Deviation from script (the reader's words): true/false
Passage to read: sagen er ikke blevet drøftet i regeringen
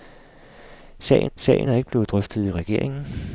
true